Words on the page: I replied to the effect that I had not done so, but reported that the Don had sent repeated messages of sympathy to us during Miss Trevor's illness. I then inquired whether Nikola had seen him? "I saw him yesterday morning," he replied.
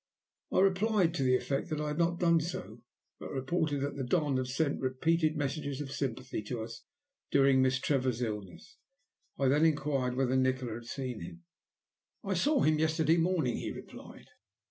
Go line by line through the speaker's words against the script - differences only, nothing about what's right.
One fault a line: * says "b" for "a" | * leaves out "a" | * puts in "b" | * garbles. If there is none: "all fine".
all fine